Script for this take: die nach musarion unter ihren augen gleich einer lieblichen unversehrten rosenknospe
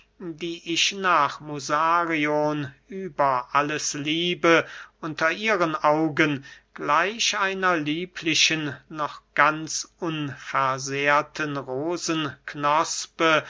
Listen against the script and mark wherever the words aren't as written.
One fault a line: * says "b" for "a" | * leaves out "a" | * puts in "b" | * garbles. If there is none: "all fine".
* puts in "ich"
* puts in "über alles liebe"
* puts in "noch ganz"